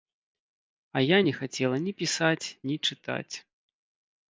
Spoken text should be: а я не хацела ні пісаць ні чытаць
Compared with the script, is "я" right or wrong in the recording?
right